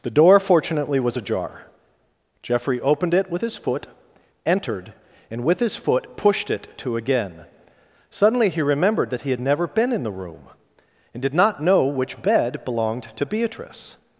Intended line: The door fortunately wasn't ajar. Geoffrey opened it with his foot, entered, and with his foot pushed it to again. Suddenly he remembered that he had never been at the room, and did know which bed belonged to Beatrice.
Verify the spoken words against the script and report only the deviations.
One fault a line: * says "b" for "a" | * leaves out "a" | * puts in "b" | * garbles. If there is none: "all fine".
* says "was" for "wasn't"
* says "in" for "at"
* puts in "not"